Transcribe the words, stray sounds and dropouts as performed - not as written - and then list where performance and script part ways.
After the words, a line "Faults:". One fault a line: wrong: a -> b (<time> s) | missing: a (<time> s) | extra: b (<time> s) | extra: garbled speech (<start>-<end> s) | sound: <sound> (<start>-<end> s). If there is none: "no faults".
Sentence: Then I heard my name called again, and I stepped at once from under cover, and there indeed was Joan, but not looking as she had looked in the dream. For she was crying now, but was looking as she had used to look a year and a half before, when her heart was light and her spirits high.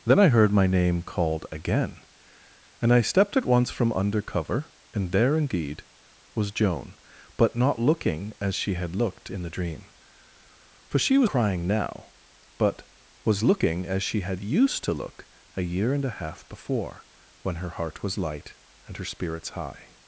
Then I heard my name called again, and I stepped at once from under cover, and there indeed was Joan, but not looking as she had looked in the dream. For she was crying now, but was looking as she had used to look a year and a half before, when her heart was light and her spirits high.
Faults:
no faults